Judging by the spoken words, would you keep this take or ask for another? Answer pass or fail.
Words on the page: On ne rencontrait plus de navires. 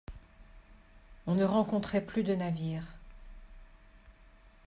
pass